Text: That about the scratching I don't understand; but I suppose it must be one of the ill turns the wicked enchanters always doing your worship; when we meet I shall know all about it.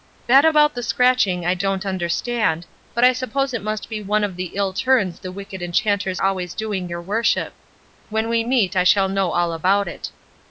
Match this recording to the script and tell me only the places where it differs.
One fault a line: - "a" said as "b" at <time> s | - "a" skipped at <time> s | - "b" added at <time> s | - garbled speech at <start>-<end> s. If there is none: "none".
none